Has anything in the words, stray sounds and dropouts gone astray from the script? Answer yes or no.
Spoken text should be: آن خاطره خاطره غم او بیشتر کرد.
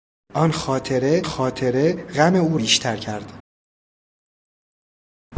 no